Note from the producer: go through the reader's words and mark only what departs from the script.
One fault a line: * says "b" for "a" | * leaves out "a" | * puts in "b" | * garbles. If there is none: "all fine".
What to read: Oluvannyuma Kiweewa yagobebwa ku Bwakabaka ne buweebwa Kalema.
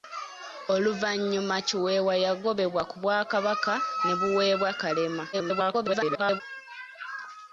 * garbles